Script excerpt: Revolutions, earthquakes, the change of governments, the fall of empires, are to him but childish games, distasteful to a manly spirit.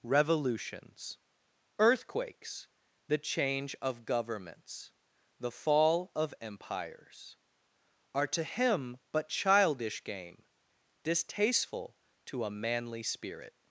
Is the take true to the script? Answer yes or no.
no